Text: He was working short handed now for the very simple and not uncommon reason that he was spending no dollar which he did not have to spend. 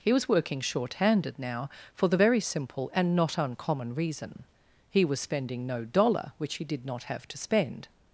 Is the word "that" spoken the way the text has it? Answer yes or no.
no